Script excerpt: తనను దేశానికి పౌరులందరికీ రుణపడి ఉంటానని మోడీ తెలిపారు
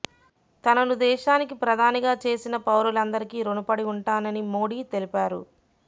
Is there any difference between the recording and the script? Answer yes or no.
yes